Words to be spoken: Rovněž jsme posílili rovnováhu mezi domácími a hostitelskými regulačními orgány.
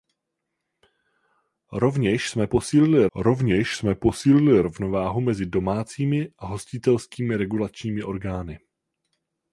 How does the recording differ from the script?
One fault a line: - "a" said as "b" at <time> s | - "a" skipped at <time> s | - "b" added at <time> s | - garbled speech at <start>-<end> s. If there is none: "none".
- "rovněž jsme posílili" added at 3.2 s